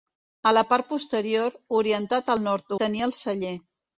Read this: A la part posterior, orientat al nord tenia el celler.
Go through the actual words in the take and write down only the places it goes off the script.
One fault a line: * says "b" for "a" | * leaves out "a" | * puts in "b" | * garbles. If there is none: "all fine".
all fine